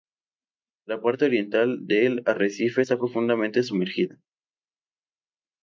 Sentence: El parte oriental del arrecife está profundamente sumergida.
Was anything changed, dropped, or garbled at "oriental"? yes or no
no